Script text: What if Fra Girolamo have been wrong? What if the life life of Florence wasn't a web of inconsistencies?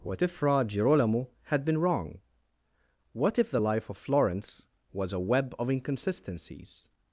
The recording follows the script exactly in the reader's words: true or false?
false